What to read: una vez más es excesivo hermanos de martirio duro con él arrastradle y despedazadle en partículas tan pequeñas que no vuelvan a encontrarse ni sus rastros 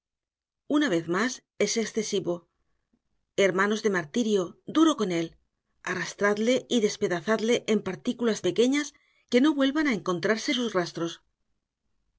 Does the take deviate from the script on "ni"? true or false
true